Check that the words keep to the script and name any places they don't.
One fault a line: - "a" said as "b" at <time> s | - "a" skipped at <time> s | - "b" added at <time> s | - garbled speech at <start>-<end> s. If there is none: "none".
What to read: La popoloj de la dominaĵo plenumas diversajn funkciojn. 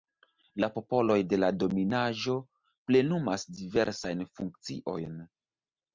none